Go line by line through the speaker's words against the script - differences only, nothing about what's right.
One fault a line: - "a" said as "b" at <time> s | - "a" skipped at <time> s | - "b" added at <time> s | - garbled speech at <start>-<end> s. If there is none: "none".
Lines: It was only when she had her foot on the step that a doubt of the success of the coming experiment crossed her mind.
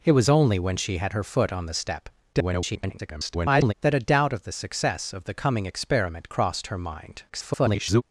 - garbled speech at 2.3-3.7 s
- garbled speech at 7.3-8.0 s